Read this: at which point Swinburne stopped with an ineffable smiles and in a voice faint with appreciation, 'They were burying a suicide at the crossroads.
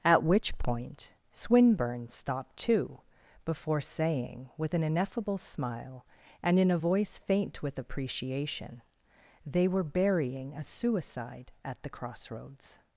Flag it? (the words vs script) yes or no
yes